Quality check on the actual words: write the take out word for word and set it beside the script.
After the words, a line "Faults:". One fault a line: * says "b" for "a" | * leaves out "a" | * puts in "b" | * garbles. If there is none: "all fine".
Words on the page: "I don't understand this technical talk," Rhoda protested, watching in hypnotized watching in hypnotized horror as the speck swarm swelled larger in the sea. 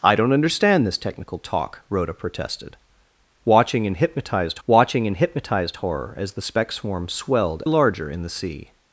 "I don't understand this technical talk," Rhoda protested, watching in hypnotized watching in hypnotized horror as the speck swarm swelled larger in the sea.
Faults:
all fine